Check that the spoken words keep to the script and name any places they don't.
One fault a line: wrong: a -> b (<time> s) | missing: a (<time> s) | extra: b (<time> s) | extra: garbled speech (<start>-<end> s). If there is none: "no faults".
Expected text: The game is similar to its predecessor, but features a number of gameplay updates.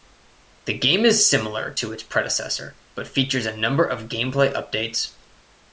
no faults